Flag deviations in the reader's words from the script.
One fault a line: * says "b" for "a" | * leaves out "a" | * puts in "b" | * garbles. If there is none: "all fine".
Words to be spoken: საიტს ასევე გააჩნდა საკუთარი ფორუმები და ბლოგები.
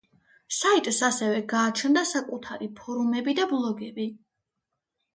all fine